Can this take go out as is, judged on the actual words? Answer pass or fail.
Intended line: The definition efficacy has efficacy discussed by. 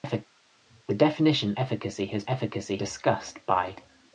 pass